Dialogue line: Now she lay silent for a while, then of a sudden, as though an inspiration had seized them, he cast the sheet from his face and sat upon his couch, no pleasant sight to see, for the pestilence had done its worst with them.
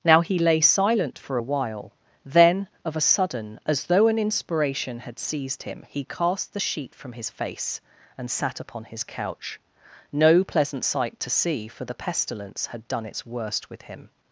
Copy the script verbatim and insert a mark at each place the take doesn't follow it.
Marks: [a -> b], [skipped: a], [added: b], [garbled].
Now [she -> he] lay silent for a while, then of a sudden, as though an inspiration had seized [them, -> him] he cast the sheet from his face and sat upon his couch, no pleasant sight to see, for the pestilence had done its worst with [them. -> him]